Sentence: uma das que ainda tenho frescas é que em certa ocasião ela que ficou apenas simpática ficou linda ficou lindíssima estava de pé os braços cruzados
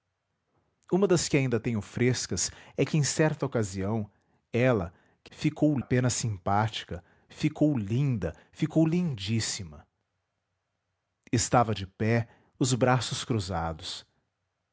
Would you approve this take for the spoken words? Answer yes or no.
yes